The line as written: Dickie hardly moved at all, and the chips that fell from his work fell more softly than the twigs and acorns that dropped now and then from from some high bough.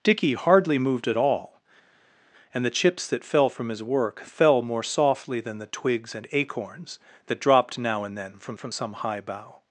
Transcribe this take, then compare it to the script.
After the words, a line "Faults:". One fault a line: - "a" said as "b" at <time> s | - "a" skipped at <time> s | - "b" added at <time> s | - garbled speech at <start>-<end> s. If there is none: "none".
Dickie hardly moved at all, and the chips that fell from his work fell more softly than the twigs and acorns that dropped now and then from from some high bough.
Faults:
none